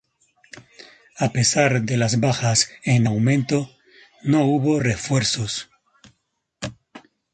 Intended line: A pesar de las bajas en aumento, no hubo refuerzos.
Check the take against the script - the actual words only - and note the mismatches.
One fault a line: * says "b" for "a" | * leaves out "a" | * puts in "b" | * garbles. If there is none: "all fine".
all fine